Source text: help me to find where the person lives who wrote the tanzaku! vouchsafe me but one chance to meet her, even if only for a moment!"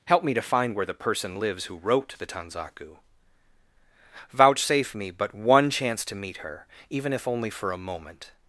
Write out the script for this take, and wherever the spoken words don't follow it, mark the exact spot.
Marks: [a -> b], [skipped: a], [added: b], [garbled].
help me to find where the person lives who wrote the tanzaku! vouchsafe me but one chance to meet her, even if only for a moment!"